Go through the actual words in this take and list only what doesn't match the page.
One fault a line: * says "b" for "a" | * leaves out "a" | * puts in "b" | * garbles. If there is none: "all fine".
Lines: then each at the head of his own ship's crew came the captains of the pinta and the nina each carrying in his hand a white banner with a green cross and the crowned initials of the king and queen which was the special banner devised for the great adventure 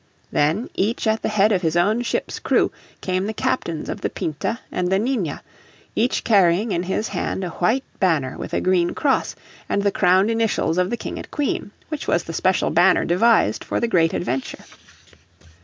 all fine